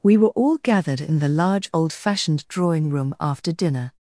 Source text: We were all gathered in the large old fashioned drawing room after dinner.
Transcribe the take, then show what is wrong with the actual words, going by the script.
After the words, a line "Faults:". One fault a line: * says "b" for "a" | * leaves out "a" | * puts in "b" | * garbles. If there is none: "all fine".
We were all gathered in the large old fashioned drawing room after dinner.
Faults:
all fine